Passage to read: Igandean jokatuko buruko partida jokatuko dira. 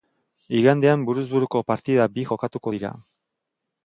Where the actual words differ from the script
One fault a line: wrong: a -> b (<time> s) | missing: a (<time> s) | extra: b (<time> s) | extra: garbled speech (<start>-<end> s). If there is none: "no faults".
wrong: jokatuko -> buruz (1.1 s)
extra: bi (2.1 s)